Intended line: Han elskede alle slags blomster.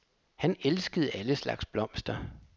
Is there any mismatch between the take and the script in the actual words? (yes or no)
no